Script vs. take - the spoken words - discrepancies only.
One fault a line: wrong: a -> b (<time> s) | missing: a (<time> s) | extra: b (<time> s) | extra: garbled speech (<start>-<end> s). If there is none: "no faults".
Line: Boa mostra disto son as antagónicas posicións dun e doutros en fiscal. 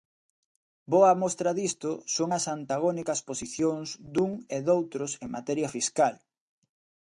extra: materia (5.4 s)